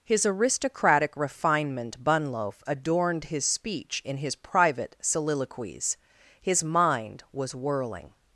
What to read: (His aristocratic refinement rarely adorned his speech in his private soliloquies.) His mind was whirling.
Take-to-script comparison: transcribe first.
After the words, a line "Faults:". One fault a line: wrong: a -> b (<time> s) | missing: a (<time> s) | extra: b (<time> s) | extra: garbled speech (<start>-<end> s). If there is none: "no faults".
(His aristocratic refinement bunloaf adorned his speech in his private soliloquies.) His mind was whirling.
Faults:
wrong: rarely -> bunloaf (2.0 s)